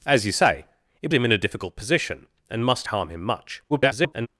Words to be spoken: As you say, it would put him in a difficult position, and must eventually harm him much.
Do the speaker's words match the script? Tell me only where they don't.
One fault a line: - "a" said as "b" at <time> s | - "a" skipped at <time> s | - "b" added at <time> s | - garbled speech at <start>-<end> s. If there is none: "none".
- "would put" skipped at 1.1 s
- "eventually" skipped at 2.9 s
- garbled speech at 3.7-4.3 s